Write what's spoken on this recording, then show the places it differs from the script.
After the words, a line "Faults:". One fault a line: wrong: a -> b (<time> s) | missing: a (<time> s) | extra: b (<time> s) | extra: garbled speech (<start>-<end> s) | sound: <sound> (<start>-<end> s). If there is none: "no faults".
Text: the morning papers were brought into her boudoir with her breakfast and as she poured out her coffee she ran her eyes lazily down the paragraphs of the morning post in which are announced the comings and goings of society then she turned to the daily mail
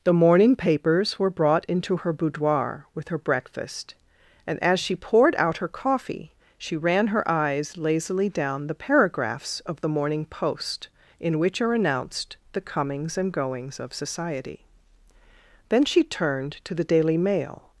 the morning papers were brought into her boudoir with her breakfast and as she poured out her coffee she ran her eyes lazily down the paragraphs of the morning post in which are announced the comings and goings of society then she turned to the daily mail
Faults:
no faults